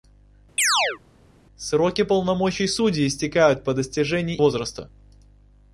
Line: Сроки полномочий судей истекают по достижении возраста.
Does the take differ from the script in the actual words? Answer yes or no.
no